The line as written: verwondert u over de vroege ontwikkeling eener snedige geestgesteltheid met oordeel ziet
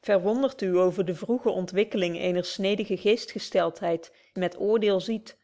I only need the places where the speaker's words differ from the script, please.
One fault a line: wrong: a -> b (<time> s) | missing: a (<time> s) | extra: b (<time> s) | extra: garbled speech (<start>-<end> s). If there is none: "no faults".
no faults